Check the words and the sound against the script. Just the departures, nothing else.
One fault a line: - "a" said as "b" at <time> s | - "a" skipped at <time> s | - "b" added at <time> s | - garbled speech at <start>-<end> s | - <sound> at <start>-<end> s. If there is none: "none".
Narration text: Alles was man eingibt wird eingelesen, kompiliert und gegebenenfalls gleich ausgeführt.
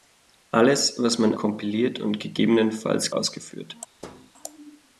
- "eingibt wird eingelesen" skipped at 1.4 s
- "gleich" skipped at 3.1 s
- thud at 4.0-4.3 s